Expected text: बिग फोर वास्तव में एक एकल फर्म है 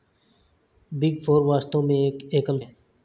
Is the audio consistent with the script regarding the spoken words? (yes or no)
no